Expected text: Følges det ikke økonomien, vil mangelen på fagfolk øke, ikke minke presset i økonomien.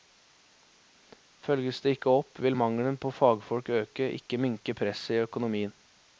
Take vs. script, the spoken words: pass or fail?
fail